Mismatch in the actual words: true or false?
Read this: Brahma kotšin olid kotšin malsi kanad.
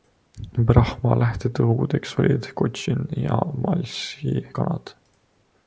true